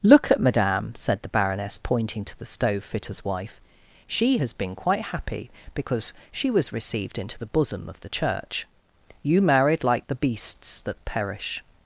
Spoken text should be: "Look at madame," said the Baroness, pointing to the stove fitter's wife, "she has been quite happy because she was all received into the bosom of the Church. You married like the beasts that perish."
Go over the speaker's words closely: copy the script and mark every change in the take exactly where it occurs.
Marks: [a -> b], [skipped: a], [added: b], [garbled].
"Look at madame," said the Baroness, pointing to the stove fitter's wife, "she has been quite happy because she was [skipped: all] received into the bosom of the Church. You married like the beasts that perish."